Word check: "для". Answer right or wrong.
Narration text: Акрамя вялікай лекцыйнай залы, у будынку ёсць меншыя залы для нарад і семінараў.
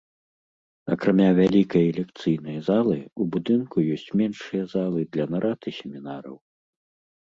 right